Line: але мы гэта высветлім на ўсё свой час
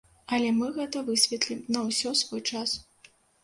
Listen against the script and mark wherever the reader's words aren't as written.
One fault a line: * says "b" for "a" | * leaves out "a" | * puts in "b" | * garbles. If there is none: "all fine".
all fine